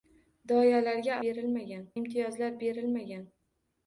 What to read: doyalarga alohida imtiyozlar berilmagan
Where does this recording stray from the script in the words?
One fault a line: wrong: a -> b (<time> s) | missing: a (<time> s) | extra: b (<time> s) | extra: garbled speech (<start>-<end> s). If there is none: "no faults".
wrong: alohida -> berilmagan (1.2 s)